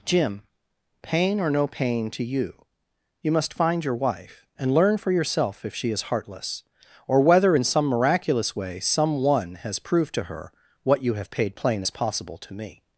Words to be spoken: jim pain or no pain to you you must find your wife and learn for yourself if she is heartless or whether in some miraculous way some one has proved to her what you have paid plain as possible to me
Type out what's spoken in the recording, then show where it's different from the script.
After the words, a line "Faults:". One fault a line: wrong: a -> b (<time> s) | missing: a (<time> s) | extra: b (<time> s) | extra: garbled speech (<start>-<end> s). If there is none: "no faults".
jim pain or no pain to you you must find your wife and learn for yourself if she is heartless or whether in some miraculous way some one has proved to her what you have paid plain as possible to me
Faults:
no faults